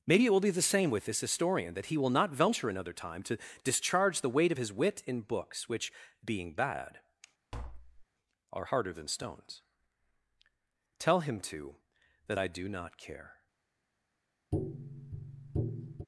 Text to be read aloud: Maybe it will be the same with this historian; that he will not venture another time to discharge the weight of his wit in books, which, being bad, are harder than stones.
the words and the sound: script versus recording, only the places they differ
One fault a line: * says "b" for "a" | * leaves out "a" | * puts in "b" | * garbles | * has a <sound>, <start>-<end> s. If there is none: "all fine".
* has a tap, 7.5-8.1 s
* puts in "Tell him too that I do not care"
* has a tap, 14.5-16.1 s